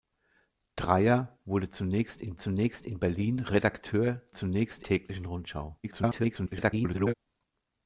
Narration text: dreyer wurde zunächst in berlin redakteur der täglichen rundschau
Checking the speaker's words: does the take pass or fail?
fail